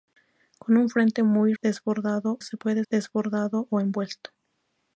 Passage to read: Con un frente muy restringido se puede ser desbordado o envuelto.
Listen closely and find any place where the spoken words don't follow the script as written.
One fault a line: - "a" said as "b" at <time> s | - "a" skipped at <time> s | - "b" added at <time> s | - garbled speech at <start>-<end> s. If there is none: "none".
- "restringido" said as "desbordado" at 1.6 s
- "ser" skipped at 2.8 s